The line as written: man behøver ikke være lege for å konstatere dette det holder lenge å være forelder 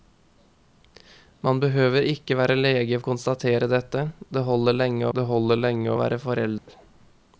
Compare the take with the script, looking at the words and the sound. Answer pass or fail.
fail